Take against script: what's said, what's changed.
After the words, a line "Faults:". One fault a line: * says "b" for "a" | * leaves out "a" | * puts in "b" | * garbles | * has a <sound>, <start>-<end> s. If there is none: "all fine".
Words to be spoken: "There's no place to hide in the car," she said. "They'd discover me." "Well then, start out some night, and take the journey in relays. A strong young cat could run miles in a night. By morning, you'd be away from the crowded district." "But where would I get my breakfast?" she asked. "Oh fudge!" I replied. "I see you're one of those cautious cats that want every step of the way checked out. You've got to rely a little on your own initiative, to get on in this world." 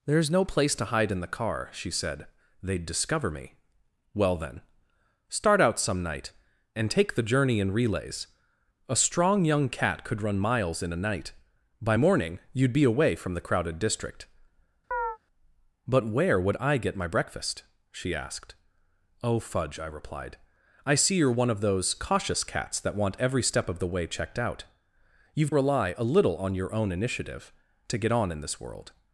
"There's no place to hide in the car," she said. "They'd discover me." "Well then, start out some night, and take the journey in relays. A strong young cat could run miles in a night. By morning, you'd be away from the crowded district." "But where would I get my breakfast?" she asked. "Oh fudge!" I replied. "I see you're one of those cautious cats that want every step of the way checked out. You've rely a little on your own initiative, to get on in this world."
Faults:
* has a chirp, 14.9-15.2 s
* leaves out "got to"